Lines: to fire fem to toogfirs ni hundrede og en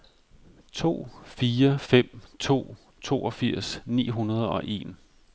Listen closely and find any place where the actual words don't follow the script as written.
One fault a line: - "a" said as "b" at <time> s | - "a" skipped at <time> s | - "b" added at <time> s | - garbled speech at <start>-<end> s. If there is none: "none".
none